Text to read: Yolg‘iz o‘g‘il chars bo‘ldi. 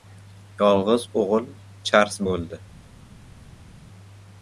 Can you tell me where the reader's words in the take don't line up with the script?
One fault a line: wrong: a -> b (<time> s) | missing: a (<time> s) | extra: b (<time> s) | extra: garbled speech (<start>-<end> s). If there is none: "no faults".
no faults